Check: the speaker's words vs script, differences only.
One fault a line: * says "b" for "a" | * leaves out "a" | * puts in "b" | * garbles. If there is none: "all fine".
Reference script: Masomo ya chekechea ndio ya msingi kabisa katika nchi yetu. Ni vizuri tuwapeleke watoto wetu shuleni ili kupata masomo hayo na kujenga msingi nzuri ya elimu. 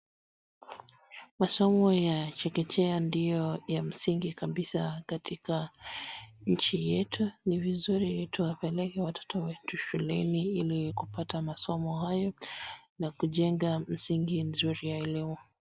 all fine